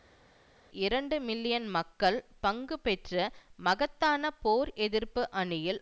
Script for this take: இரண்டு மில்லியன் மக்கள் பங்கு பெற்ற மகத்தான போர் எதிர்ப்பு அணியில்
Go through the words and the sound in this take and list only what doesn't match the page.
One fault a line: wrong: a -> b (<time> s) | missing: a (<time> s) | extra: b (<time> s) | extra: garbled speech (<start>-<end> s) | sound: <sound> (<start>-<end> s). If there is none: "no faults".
no faults